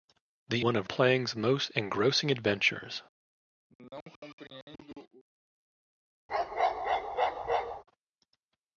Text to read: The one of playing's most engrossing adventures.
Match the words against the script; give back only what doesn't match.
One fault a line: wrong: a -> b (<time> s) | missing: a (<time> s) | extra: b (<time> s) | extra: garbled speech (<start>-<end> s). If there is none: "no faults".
no faults